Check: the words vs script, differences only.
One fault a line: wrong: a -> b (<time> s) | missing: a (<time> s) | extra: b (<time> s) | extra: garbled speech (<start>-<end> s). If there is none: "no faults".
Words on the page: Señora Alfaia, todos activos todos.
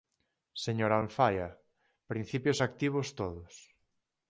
wrong: todos -> principios (2.1 s)